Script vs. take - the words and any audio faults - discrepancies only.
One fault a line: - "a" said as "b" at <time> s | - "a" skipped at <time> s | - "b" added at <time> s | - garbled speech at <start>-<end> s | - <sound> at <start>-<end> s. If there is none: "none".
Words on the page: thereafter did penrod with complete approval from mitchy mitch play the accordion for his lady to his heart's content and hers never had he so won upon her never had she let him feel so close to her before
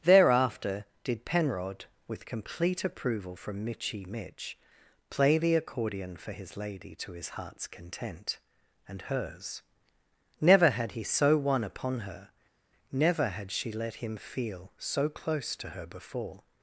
none